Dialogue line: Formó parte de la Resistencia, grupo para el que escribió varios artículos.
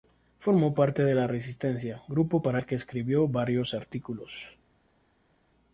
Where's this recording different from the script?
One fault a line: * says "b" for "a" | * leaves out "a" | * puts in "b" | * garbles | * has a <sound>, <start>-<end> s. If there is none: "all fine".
all fine